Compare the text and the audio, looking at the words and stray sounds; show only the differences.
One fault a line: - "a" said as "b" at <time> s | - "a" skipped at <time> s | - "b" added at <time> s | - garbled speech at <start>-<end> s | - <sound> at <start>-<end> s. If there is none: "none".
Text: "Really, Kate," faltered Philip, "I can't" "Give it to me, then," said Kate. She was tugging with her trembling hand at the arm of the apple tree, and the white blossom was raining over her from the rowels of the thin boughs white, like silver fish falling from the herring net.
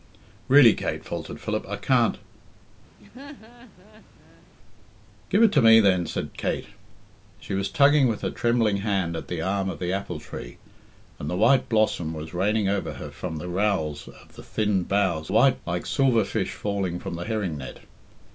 - laugh at 3.0-4.4 s